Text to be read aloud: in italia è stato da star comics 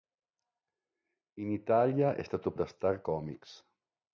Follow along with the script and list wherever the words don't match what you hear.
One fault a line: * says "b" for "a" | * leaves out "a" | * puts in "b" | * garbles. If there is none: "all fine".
all fine